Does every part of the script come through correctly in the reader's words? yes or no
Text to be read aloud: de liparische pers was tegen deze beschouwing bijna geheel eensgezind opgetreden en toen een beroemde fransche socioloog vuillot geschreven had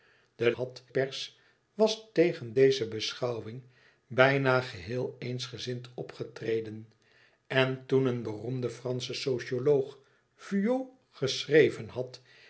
no